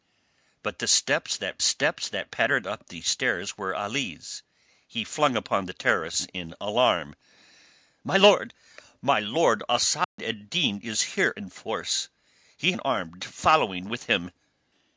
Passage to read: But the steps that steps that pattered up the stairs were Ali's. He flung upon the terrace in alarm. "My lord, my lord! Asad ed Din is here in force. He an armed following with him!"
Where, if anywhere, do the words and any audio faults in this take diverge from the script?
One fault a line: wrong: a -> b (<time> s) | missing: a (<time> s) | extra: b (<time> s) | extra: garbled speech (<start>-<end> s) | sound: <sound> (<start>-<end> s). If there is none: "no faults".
sound: dropout (10.0-10.2 s)